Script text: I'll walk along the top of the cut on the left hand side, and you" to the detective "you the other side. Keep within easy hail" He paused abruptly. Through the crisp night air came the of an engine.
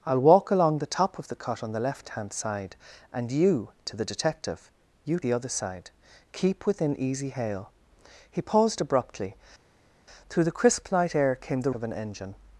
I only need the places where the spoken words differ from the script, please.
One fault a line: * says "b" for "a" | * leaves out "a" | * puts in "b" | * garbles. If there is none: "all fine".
all fine